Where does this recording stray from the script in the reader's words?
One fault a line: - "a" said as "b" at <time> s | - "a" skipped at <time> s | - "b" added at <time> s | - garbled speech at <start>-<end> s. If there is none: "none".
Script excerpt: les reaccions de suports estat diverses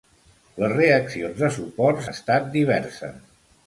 none